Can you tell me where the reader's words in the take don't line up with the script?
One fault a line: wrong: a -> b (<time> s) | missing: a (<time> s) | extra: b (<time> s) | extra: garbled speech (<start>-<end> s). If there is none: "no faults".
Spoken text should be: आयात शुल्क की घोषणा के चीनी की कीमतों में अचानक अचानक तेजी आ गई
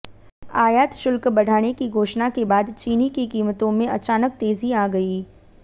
extra: बढ़ाने (1.3 s)
extra: बाद (2.5 s)
missing: अचानक (4.4 s)